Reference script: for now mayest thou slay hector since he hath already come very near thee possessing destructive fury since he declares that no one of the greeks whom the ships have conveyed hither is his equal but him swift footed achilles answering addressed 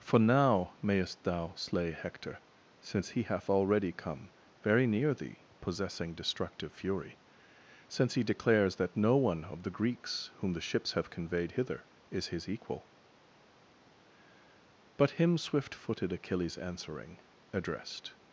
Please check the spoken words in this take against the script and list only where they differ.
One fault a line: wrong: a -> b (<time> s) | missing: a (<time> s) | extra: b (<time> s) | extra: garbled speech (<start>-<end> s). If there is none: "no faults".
no faults